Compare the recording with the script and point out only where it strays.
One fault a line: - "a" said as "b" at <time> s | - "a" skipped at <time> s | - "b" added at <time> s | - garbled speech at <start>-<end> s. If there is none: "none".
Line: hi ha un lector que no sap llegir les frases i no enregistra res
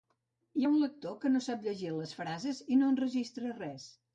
none